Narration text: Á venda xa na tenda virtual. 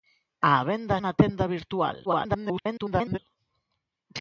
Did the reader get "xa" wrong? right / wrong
wrong